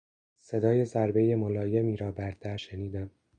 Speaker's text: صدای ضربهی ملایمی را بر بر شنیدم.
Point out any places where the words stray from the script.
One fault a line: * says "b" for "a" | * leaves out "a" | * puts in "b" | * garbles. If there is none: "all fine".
* says "در" for "بر"